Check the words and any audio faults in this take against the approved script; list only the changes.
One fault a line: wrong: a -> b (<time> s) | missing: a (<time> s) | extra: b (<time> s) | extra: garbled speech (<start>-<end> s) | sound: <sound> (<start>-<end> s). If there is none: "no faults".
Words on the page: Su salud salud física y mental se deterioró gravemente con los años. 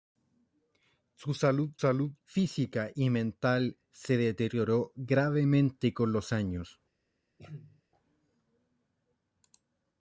sound: throat clearing (7.4-7.8 s)